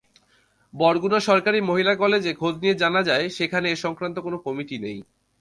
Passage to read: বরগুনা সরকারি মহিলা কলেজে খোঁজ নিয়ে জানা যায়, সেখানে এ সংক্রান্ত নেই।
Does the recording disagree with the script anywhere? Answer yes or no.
yes